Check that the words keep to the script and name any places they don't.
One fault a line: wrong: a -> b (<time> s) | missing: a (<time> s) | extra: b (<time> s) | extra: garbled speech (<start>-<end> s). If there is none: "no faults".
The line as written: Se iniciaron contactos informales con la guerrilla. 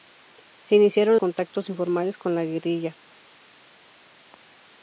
no faults